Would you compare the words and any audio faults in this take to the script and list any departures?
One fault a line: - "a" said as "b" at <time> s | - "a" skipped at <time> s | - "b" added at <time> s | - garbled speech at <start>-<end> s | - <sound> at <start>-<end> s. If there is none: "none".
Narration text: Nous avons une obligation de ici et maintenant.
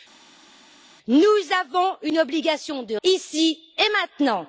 none